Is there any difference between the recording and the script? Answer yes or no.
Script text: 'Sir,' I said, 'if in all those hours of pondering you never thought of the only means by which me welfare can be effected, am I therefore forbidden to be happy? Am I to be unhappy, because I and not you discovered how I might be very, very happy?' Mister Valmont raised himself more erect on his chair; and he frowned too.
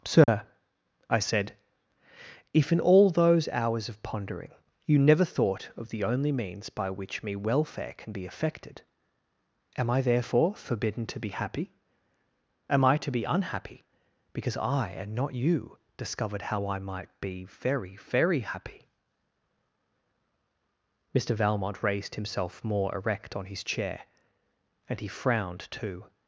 no